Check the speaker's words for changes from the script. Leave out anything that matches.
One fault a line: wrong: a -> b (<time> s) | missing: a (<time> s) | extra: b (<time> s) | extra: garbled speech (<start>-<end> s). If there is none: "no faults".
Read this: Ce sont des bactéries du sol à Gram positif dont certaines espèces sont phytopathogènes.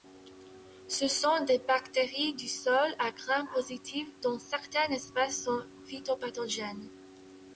no faults